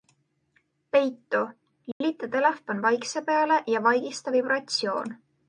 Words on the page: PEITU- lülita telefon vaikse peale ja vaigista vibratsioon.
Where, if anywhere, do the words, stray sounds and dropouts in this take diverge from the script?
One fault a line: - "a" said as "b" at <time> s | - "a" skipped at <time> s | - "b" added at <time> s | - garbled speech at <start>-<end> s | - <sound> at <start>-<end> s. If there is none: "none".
- dropout at 1.9-2.0 s